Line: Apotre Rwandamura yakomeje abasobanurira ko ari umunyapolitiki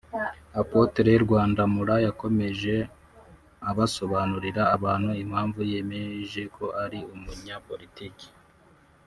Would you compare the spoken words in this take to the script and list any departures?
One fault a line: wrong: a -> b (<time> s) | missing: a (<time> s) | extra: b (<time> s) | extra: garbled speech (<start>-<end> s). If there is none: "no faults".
extra: abantu impamvu yemeje (4.7 s)